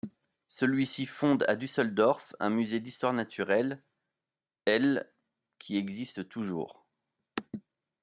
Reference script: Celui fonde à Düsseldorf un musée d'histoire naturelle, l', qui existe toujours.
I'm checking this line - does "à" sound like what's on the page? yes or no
yes